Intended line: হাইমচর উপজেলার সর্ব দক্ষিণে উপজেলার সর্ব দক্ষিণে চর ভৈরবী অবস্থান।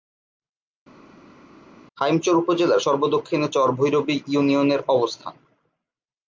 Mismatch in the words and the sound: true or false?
true